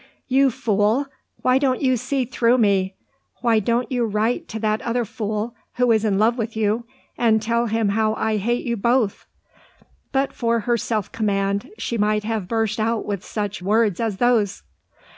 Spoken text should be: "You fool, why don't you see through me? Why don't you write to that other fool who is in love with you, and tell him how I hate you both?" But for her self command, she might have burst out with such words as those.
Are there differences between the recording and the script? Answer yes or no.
no